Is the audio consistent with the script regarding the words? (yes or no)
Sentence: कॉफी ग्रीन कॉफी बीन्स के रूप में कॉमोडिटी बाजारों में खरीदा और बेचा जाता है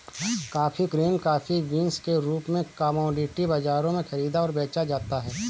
yes